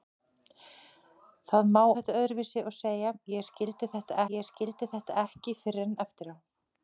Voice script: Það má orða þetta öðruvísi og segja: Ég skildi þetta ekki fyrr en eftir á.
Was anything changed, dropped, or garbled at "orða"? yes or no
yes